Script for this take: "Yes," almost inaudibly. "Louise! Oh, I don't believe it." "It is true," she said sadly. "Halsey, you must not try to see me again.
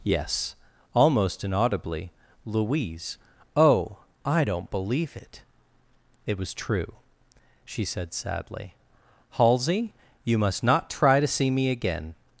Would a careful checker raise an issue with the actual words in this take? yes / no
yes